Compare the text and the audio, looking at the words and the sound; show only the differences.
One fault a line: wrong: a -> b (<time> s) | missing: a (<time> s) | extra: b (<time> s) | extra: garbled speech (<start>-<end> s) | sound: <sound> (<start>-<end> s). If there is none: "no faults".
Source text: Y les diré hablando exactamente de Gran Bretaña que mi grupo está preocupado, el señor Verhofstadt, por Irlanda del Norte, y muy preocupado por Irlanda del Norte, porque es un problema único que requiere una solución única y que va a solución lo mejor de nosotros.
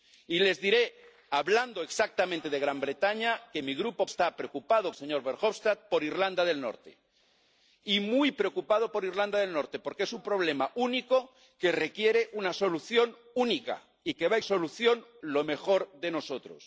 no faults